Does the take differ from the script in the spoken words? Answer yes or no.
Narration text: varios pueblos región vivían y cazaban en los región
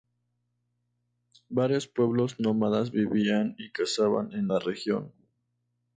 yes